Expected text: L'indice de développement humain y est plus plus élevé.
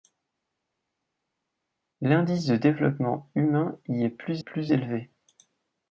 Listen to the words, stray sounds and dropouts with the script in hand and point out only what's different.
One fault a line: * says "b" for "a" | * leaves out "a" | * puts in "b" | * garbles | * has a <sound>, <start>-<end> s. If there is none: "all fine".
all fine